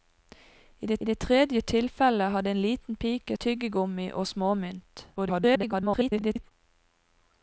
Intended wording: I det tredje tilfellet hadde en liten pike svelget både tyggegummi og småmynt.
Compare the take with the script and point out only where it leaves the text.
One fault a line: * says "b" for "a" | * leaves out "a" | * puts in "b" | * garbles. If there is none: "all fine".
* puts in "det"
* leaves out "svelget både"
* garbles